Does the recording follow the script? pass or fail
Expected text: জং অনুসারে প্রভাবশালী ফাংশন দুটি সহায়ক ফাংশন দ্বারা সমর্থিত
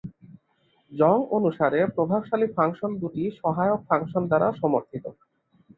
pass